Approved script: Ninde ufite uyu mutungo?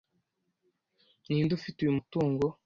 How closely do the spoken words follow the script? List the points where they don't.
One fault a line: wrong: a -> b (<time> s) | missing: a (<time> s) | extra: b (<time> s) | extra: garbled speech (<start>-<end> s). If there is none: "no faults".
no faults